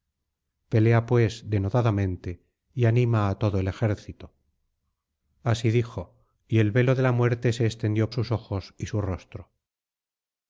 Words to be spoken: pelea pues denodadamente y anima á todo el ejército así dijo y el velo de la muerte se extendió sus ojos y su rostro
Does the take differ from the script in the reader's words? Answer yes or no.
no